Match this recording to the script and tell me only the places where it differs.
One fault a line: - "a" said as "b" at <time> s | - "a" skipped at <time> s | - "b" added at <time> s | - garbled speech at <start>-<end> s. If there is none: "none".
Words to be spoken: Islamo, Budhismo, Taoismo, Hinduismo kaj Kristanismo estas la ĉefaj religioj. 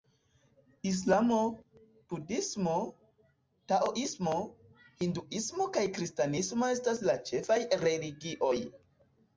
none